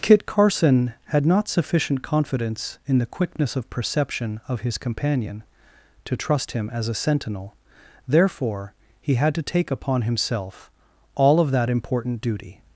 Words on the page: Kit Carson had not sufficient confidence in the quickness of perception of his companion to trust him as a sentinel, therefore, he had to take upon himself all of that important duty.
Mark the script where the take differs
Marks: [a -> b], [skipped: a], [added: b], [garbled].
Kit Carson had not sufficient confidence in the quickness of perception of his companion to trust him as a sentinel, therefore, he had to take upon himself all of that important duty.